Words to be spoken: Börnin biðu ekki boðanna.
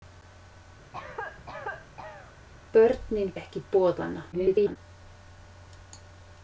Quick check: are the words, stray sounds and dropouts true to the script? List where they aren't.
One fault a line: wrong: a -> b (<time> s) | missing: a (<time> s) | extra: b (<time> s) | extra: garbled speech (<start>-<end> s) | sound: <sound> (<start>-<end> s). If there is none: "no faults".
sound: cough (0.9-2.3 s)
missing: biðu (3.3 s)
extra: garbled speech (4.3-4.8 s)